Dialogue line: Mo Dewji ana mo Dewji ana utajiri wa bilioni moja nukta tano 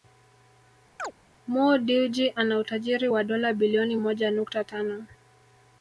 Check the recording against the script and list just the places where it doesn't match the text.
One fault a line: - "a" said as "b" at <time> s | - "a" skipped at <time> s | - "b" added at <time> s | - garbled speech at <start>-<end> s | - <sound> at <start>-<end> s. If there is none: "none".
- chirp at 1.0-1.1 s
- "mo Dewji ana" skipped at 2.6 s
- "dola" added at 3.2 s